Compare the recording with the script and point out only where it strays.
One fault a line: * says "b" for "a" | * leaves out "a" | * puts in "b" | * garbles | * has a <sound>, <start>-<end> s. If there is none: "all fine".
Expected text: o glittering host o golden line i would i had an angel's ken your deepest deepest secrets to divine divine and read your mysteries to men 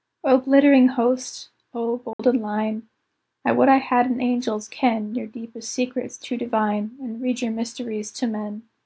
* has a dropout, 2.1-2.2 s
* leaves out "deepest"
* leaves out "divine"